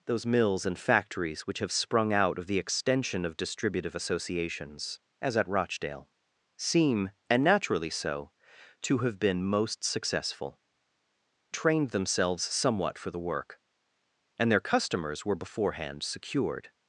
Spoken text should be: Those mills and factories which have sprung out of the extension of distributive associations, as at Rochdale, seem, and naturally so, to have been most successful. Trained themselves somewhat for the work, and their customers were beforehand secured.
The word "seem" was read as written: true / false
true